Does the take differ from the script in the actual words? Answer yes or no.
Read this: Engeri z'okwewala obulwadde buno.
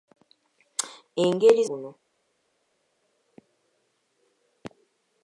yes